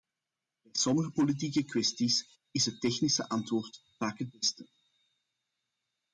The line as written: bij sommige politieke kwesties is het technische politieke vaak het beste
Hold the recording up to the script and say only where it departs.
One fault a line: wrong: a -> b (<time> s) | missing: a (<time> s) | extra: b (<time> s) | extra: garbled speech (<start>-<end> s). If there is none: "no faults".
wrong: politieke -> antwoord (3.3 s)